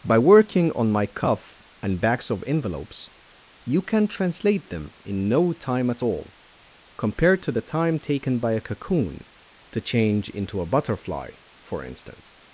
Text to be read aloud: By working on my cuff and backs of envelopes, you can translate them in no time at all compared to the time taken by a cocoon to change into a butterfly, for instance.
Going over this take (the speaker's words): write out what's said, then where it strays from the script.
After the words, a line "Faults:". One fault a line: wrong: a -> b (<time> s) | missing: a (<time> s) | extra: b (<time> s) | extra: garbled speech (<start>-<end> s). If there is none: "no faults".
By working on my cuff and backs of envelopes, you can translate them in no time at all compared to the time taken by a cocoon to change into a butterfly, for instance.
Faults:
no faults